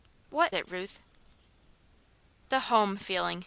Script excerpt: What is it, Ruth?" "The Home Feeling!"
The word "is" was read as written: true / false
false